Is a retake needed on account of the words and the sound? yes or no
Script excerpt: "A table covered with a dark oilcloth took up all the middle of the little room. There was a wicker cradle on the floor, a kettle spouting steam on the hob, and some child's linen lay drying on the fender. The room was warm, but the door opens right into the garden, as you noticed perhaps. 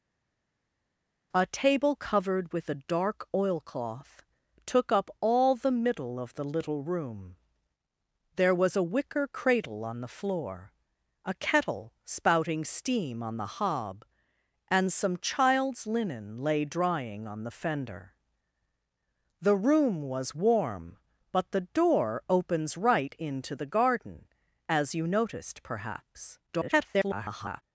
yes